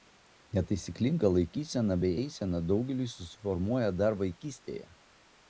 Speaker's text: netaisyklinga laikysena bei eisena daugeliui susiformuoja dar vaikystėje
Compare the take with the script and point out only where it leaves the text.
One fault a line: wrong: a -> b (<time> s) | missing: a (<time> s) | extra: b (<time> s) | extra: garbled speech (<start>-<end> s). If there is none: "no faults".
no faults